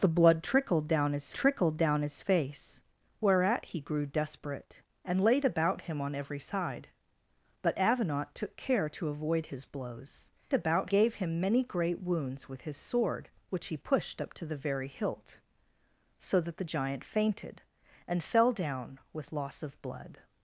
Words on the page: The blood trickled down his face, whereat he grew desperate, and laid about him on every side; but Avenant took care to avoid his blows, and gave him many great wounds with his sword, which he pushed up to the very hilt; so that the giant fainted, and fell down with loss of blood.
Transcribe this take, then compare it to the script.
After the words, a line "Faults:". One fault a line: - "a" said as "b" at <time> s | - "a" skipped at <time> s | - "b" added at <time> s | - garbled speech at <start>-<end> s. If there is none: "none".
The blood trickled down his trickled down his face, whereat he grew desperate, and laid about him on every side; but Avenant took care to avoid his blows, about gave him many great wounds with his sword, which he pushed up to the very hilt; so that the giant fainted, and fell down with loss of blood.
Faults:
- "trickled down his" added at 1.3 s
- "and" said as "about" at 10.5 s